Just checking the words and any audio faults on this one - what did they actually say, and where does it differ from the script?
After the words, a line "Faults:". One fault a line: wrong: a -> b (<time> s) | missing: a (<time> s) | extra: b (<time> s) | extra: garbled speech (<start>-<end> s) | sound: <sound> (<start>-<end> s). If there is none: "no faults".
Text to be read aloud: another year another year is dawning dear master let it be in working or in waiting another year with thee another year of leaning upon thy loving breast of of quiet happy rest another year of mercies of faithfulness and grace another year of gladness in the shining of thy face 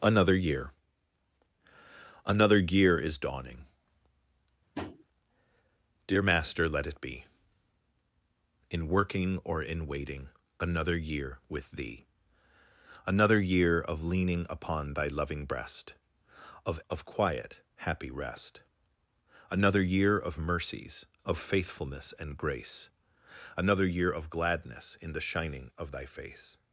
another year another year is dawning dear master let it be in working or in waiting another year with thee another year of leaning upon thy loving breast of of quiet happy rest another year of mercies of faithfulness and grace another year of gladness in the shining of thy face
Faults:
sound: tap (4.7-5.0 s)